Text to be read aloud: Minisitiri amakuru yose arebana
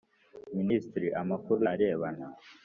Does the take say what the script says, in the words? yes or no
no